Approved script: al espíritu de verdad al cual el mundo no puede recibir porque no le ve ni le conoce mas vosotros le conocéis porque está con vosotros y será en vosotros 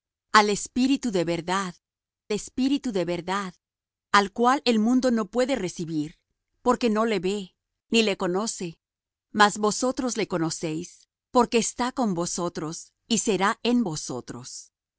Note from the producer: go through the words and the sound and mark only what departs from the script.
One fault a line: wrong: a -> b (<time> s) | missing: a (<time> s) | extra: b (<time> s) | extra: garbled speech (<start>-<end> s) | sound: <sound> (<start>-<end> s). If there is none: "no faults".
extra: espíritu de verdad (2.3 s)